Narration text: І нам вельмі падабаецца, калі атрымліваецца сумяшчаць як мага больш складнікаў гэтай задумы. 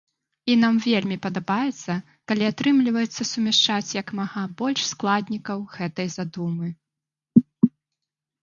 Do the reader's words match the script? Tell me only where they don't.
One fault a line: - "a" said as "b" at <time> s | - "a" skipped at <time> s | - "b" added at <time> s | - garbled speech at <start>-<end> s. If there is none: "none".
none